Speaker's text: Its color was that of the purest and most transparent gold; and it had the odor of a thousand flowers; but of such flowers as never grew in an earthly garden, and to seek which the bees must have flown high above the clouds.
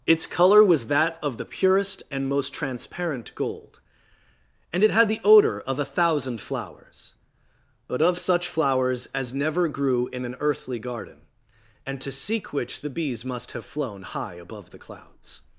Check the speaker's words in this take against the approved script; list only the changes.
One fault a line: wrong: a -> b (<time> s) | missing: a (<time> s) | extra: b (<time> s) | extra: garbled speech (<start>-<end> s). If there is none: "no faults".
no faults